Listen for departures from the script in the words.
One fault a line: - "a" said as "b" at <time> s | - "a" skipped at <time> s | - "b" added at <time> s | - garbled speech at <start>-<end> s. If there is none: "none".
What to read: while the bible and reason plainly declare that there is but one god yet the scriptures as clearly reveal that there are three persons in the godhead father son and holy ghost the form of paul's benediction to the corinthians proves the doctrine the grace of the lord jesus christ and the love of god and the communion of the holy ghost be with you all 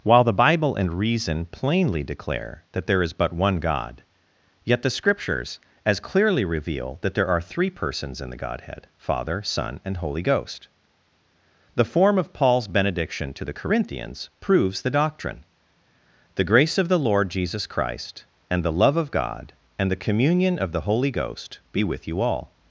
none